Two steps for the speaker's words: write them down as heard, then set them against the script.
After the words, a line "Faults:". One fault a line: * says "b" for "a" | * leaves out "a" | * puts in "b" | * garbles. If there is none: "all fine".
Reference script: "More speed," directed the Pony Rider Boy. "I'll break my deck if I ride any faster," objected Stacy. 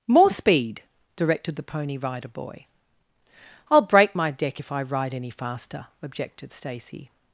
"More speed," directed the Pony Rider Boy. "I'll break my deck if I ride any faster," objected Stacy.
Faults:
all fine